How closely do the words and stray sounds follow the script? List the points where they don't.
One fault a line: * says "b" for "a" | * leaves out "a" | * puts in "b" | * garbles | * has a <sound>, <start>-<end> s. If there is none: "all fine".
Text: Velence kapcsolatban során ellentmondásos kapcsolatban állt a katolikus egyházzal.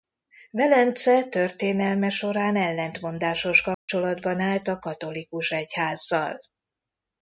* says "történelme" for "kapcsolatban"
* has a dropout, 3.7-3.9 s